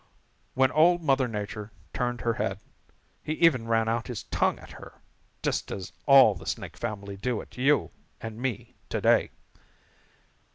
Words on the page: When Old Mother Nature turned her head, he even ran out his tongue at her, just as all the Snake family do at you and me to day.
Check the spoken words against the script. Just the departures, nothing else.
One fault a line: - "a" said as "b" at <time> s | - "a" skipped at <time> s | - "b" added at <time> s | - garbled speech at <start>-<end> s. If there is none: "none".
none